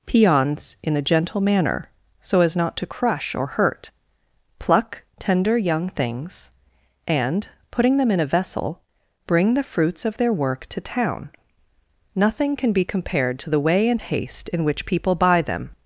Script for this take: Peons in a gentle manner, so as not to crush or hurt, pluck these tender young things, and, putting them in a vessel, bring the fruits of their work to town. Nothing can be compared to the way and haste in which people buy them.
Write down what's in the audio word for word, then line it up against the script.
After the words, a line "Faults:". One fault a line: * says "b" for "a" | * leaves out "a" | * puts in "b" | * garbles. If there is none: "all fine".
Peons in a gentle manner, so as not to crush or hurt, pluck tender young things, and, putting them in a vessel, bring the fruits of their work to town. Nothing can be compared to the way and haste in which people buy them.
Faults:
* leaves out "these"